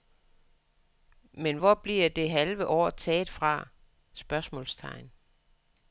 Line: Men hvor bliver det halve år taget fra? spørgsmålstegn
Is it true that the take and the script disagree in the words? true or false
false